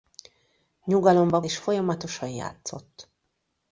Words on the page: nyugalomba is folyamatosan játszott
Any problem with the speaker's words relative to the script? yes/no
no